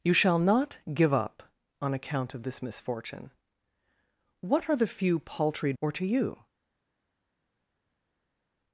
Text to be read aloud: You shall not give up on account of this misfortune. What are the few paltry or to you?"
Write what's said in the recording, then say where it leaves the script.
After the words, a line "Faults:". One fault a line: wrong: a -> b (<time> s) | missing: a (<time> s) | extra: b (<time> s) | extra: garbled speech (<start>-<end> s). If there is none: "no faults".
You shall not give up on account of this misfortune. What are the few paltry or to you?"
Faults:
no faults